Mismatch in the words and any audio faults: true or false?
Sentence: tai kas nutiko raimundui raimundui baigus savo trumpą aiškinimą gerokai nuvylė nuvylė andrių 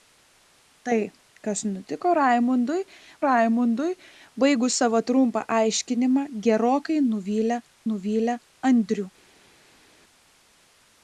false